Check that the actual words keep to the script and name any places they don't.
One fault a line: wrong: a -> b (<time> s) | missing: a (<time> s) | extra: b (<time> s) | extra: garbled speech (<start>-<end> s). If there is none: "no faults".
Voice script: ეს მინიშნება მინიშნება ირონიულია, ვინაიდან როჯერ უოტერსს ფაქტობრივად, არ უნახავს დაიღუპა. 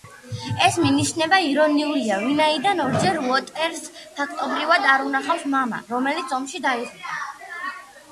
missing: მინიშნება (1.4 s)
extra: მამა რომელიც ომში (5.6 s)